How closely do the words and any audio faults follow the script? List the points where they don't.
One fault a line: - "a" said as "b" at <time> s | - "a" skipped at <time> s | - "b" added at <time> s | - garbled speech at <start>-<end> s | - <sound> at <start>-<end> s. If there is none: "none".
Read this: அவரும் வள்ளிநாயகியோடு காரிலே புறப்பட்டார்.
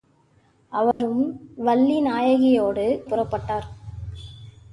- dropout at 0.9-1.0 s
- "காரிலே" skipped at 2.9 s